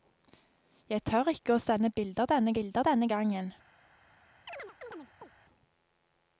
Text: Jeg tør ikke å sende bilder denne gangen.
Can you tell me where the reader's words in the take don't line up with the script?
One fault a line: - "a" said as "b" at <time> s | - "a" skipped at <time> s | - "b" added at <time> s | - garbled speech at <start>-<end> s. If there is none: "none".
- "bilder denne" added at 2.6 s